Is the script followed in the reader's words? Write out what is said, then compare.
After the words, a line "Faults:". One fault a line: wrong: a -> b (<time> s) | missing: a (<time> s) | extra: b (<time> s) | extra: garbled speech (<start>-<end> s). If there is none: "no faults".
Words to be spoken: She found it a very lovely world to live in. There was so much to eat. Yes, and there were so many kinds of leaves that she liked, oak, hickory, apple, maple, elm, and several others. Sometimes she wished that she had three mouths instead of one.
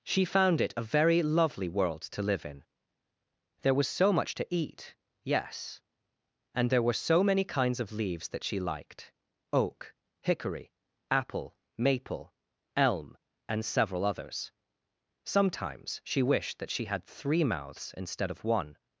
She found it a very lovely world to live in. There was so much to eat. Yes, and there were so many kinds of leaves that she liked, oak, hickory, apple, maple, elm, and several others. Sometimes she wished that she had three mouths instead of one.
Faults:
no faults